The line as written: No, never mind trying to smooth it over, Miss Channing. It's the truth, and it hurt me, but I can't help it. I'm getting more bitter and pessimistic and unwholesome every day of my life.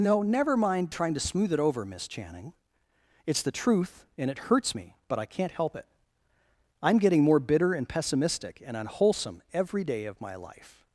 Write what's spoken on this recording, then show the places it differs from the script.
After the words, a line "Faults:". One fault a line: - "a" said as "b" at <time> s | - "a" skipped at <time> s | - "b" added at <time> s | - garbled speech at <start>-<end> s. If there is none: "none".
No, never mind trying to smooth it over, Miss Channing. It's the truth, and it hurts me, but I can't help it. I'm getting more bitter and pessimistic and unwholesome every day of my life.
Faults:
- "hurt" said as "hurts" at 4.4 s